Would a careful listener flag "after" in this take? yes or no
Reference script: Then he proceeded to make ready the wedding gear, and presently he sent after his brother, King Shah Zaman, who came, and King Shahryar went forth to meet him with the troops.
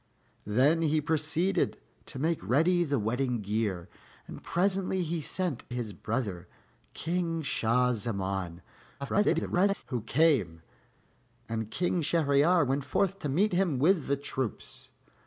yes